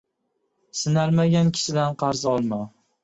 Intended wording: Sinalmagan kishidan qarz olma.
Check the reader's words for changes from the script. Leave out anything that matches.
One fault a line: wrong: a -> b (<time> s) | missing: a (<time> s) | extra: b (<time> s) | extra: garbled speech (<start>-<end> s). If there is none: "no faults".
no faults